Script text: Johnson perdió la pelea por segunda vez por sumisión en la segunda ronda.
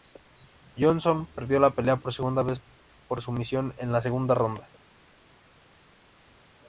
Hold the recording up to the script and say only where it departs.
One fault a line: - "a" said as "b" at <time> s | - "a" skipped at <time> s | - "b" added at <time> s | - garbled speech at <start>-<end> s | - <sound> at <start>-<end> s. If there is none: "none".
none